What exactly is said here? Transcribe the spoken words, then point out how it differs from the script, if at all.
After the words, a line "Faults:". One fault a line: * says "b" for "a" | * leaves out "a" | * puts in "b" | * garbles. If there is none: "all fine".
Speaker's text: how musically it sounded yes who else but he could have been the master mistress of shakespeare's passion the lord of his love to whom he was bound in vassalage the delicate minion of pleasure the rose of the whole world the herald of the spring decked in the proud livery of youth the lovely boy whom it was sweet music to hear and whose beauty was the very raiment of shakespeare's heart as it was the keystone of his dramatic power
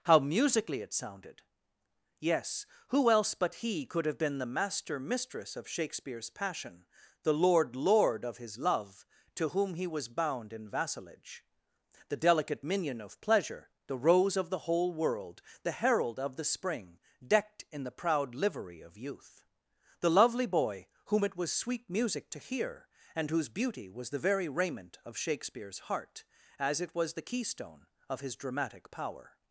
how musically it sounded yes who else but he could have been the master mistress of shakespeare's passion the lord lord of his love to whom he was bound in vassalage the delicate minion of pleasure the rose of the whole world the herald of the spring decked in the proud livery of youth the lovely boy whom it was sweet music to hear and whose beauty was the very raiment of shakespeare's heart as it was the keystone of his dramatic power
Faults:
* puts in "lord"